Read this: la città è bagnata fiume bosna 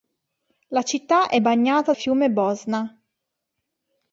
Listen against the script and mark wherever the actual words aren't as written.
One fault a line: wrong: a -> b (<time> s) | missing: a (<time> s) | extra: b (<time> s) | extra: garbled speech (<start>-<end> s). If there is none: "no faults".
no faults